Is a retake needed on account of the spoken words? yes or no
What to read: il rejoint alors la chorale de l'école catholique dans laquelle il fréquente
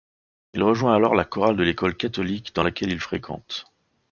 no